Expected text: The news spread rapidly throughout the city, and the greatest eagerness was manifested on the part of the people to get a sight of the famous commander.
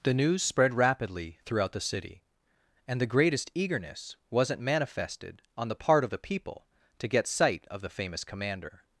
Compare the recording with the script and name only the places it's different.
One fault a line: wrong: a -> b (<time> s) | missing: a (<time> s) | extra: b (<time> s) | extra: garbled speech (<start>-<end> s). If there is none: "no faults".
wrong: was -> wasn't (4.3 s)
missing: a (7.3 s)